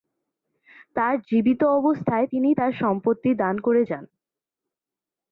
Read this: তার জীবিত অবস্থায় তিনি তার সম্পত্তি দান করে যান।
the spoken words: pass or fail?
pass